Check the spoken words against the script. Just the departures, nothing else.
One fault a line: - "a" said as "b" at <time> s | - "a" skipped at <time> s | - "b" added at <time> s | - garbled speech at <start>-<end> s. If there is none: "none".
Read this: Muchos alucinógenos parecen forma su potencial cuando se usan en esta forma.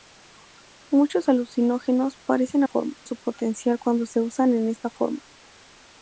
none